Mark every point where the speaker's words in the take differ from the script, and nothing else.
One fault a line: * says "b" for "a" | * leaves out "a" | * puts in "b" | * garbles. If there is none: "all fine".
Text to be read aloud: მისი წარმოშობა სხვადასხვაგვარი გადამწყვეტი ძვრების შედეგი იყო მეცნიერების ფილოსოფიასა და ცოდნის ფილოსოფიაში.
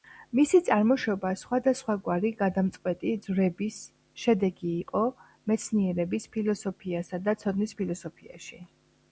all fine